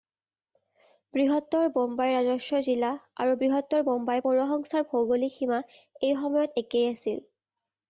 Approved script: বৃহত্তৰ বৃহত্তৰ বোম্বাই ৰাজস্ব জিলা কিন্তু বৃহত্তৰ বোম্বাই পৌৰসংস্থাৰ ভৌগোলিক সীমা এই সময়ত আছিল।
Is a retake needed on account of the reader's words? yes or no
yes